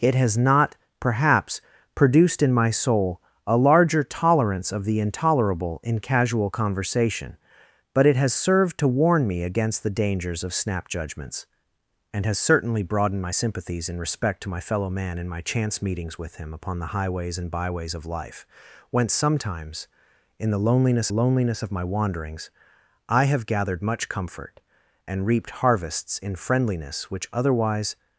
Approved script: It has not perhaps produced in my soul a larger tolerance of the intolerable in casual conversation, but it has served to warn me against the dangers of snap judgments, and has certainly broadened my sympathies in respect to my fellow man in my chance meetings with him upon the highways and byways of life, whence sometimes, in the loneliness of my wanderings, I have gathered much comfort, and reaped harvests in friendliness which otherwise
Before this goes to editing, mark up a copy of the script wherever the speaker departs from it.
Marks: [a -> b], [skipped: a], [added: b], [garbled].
It has not perhaps produced in my soul a larger tolerance of the intolerable in casual conversation, but it has served to warn me against the dangers of snap judgments, and has certainly broadened my sympathies in respect to my fellow man in my chance meetings with him upon the highways and byways of life, whence sometimes, in the loneliness [added: loneliness] of my wanderings, I have gathered much comfort, and reaped harvests in friendliness which otherwise